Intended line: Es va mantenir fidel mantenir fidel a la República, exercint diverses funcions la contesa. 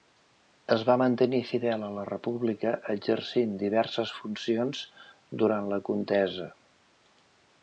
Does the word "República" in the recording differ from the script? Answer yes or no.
no